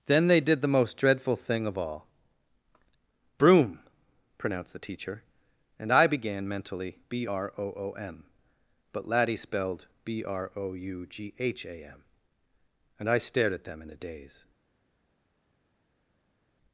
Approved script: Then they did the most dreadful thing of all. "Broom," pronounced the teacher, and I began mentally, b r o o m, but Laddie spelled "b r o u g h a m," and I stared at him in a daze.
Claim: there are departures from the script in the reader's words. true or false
true